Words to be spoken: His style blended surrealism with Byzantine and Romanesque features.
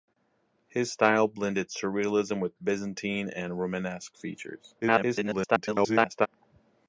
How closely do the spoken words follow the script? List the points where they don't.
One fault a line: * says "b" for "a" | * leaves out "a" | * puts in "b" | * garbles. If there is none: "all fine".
* garbles